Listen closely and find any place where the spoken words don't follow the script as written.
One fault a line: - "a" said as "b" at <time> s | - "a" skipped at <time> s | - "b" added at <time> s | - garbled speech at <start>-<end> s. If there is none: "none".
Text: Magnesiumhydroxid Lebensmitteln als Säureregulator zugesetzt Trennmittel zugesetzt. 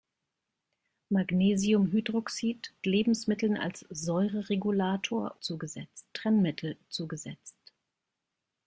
none